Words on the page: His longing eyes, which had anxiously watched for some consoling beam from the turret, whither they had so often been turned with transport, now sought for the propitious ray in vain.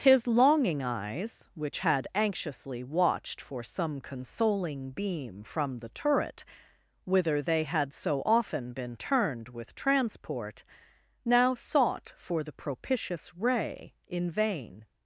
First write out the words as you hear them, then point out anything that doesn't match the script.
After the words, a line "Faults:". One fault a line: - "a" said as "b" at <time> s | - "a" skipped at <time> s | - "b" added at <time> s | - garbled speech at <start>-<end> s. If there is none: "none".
His longing eyes, which had anxiously watched for some consoling beam from the turret, whither they had so often been turned with transport, now sought for the propitious ray in vain.
Faults:
none